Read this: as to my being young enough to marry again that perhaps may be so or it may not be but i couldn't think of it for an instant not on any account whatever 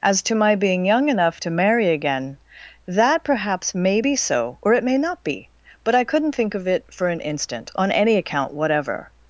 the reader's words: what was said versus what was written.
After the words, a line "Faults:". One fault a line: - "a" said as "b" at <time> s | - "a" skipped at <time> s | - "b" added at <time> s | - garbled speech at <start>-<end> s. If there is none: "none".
as to my being young enough to marry again that perhaps may be so or it may not be but i couldn't think of it for an instant on any account whatever
Faults:
- "not" skipped at 7.7 s